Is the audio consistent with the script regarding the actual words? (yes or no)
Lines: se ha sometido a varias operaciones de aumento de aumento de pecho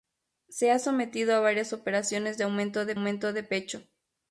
yes